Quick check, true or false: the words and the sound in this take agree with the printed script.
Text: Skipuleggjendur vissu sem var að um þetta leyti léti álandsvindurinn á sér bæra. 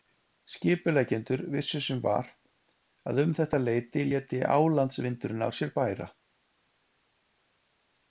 true